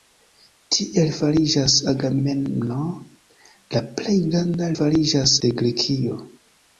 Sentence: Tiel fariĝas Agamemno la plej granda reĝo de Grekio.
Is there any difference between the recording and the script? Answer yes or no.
yes